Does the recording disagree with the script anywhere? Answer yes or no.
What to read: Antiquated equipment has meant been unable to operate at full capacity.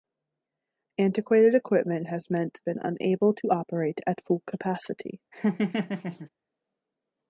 no